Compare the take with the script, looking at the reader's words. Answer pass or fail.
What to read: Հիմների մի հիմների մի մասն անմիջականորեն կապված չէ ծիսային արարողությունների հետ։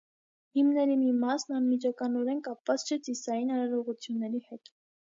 fail